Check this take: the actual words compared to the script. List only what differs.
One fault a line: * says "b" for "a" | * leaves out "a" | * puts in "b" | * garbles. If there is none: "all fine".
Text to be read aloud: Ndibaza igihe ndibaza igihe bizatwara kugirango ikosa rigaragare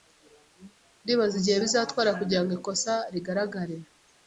* leaves out "ndibaza igihe"